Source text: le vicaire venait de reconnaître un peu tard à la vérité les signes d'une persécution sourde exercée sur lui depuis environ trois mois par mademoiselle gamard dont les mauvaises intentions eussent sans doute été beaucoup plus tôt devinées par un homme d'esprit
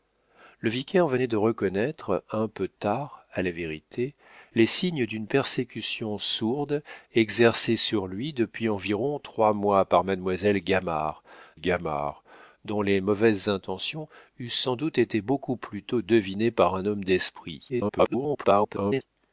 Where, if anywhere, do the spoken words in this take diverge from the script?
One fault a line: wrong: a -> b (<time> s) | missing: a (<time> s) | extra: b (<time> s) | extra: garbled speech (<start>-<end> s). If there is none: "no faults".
extra: gamard (11.5 s)
extra: garbled speech (17.7-19.0 s)